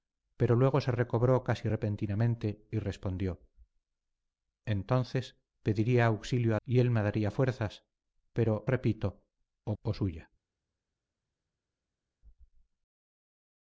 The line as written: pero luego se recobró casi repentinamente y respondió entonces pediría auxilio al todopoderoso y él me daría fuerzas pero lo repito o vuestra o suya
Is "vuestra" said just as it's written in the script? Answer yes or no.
no